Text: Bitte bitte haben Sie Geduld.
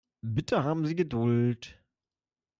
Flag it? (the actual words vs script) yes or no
yes